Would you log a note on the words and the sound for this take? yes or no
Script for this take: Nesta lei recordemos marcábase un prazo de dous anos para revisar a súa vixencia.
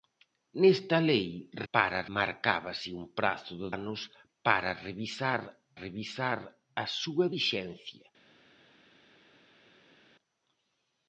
yes